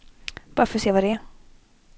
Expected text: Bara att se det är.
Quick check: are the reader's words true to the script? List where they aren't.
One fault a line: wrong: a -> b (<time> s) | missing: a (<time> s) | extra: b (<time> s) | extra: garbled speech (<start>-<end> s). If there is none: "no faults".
extra: för (0.7 s)
extra: vad (0.9 s)